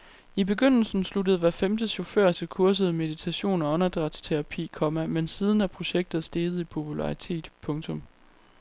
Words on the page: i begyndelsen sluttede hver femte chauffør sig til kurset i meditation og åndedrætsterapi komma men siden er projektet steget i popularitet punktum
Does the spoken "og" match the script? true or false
true